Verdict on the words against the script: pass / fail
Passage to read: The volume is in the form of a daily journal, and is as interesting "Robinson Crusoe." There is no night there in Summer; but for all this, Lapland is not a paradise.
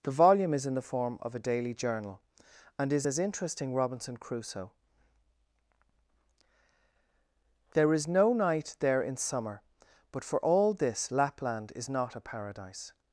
pass